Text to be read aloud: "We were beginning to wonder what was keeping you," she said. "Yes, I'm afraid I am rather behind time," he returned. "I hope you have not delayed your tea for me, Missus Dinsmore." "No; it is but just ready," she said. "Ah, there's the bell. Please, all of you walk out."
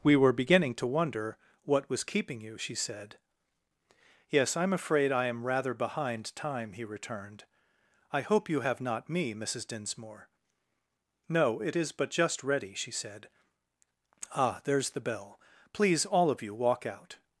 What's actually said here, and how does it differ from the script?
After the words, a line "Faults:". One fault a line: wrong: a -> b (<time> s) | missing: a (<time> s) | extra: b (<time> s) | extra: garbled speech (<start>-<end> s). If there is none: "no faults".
"We were beginning to wonder what was keeping you," she said. "Yes, I'm afraid I am rather behind time," he returned. "I hope you have not me, Missus Dinsmore." "No; it is but just ready," she said. "Ah, there's the bell. Please, all of you walk out."
Faults:
missing: delayed your tea for (9.1 s)